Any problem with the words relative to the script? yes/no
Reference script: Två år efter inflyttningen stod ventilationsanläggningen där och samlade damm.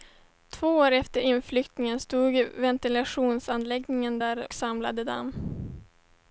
yes